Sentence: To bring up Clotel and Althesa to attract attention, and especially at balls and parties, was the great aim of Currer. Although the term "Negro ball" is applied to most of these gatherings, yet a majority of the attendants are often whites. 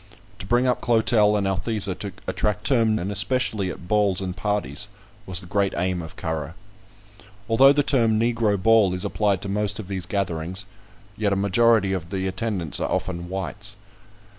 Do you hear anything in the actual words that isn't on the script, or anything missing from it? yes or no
yes